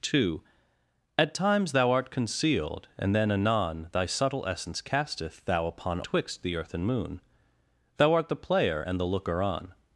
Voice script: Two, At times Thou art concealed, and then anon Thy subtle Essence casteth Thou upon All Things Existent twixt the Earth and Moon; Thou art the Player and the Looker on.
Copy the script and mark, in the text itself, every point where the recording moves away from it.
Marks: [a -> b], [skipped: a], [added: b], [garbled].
Two, At times Thou art concealed, and then anon Thy subtle Essence casteth Thou upon [skipped: All Things Existent] twixt the Earth and Moon; Thou art the Player and the Looker on.